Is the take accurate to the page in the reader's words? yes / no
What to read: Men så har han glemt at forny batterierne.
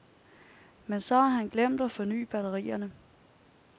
yes